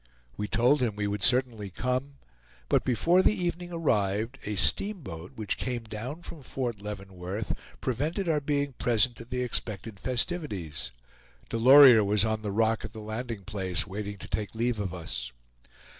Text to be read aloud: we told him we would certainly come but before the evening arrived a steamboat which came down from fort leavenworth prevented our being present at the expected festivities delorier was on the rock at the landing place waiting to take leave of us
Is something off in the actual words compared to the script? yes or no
no